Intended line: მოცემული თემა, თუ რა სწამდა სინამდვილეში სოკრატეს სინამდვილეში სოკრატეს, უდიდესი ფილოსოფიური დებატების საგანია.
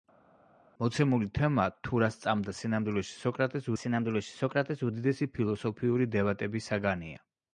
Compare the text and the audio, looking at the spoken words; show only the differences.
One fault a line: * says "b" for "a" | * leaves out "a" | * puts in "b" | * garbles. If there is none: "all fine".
all fine